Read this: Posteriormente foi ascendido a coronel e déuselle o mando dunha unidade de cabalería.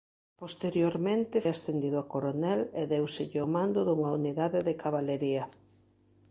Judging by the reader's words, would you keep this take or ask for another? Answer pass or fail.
fail